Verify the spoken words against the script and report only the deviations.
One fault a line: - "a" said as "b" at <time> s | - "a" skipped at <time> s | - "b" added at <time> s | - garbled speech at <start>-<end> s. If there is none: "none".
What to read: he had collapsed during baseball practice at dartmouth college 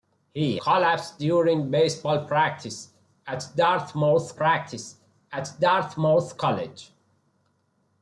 - "had" skipped at 0.6 s
- "practice at dartmouth" added at 4.3 s